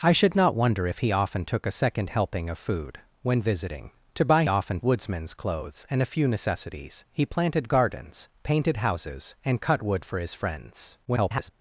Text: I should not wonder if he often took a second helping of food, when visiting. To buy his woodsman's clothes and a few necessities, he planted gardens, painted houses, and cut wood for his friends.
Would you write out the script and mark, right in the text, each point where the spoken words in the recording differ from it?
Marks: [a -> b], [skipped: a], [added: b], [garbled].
I should not wonder if he often took a second helping of food, when visiting. To buy [his -> often] woodsman's clothes and a few necessities, he planted gardens, painted houses, and cut wood for his friends. [garbled]